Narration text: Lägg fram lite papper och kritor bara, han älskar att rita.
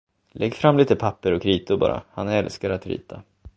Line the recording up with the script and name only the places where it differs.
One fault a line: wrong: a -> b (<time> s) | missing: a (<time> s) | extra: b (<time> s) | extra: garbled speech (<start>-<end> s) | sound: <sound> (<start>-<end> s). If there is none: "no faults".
no faults